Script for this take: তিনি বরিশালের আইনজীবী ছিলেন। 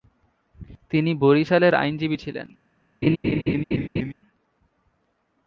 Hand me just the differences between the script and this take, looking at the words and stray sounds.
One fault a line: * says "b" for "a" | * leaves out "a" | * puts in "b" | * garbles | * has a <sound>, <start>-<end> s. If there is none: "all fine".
* has a laugh, 3.0-4.1 s